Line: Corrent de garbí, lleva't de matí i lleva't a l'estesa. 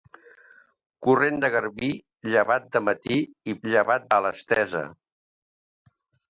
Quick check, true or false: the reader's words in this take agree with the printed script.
true